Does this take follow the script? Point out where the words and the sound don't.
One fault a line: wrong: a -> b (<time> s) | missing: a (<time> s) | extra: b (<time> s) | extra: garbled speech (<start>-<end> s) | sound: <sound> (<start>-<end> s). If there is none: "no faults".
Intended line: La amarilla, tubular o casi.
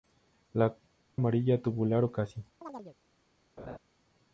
sound: chirp (2.6-3.0 s)
sound: laugh (3.6-3.8 s)